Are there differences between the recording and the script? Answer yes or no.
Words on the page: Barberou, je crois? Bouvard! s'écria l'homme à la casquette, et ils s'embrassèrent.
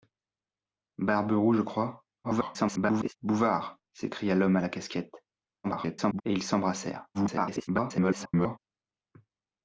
yes